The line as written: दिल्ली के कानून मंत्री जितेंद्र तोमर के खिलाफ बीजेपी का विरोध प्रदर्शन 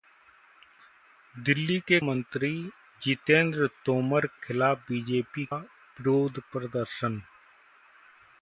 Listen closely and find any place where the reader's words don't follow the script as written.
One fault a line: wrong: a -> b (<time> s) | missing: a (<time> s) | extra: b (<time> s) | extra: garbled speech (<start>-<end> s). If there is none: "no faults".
missing: कानून (2.0 s)
missing: के (4.3 s)
missing: का (5.4 s)